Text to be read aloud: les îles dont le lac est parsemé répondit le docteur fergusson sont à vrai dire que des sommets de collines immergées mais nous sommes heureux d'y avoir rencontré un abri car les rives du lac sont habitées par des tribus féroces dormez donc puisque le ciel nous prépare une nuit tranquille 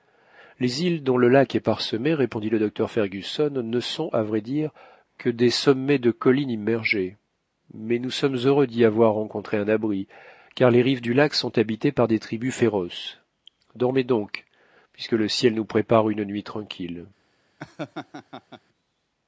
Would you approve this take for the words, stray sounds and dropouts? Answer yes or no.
no